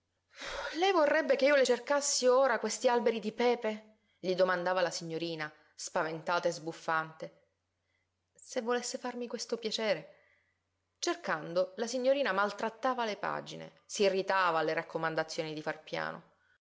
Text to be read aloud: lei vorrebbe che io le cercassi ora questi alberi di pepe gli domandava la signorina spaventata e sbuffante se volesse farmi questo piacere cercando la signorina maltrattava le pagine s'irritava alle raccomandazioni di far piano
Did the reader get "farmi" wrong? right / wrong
right